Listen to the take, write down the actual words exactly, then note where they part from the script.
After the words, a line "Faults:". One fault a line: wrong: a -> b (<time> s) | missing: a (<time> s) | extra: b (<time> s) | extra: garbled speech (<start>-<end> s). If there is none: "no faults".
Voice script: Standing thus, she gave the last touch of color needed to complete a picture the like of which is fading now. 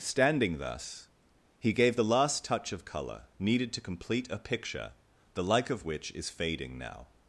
Standing thus, he gave the last touch of color needed to complete a picture the like of which is fading now.
Faults:
wrong: she -> he (1.6 s)